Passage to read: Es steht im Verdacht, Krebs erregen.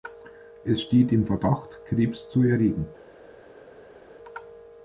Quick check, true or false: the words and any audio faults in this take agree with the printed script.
false